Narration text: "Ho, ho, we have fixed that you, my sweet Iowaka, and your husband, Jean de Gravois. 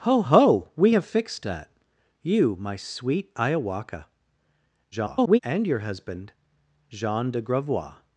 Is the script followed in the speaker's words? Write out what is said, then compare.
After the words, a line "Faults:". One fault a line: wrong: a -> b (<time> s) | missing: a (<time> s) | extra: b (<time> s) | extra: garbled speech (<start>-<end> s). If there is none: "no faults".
"Ho, ho, we have fixed that you, my sweet Iowaka, [garbled] and your husband, Jean de Gravois.
Faults:
extra: garbled speech (4.9-5.4 s)